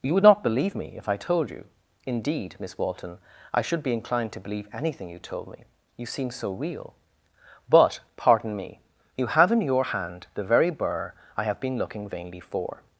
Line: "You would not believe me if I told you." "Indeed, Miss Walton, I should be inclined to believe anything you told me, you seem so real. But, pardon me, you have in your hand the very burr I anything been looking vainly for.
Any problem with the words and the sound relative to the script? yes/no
yes